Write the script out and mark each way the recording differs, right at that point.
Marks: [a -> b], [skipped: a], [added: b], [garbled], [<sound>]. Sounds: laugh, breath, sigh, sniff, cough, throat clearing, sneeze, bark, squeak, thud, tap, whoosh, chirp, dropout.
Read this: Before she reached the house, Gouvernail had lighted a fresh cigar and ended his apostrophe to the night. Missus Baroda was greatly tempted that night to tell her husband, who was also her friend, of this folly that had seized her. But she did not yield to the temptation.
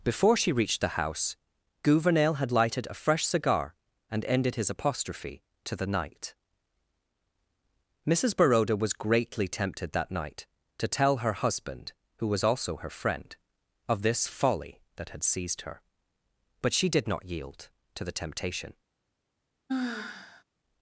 Before she reached the house, Gouvernail had lighted a fresh cigar and ended his apostrophe to the night. Missus Baroda was greatly tempted that night to tell her husband, who was also her friend, of this folly that had seized her. But she did not yield to the temptation. [sigh]